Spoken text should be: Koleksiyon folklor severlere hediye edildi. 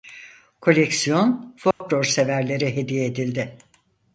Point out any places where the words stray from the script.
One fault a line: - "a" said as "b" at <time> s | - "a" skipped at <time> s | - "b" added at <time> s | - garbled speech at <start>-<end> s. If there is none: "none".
none